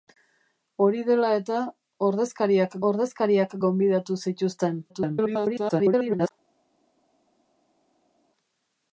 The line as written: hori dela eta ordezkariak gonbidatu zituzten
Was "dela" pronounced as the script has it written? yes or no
yes